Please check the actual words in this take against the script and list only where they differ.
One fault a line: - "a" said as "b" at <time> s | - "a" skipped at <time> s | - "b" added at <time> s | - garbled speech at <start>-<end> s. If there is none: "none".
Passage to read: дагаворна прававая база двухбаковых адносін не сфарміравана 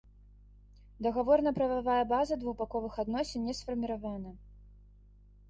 none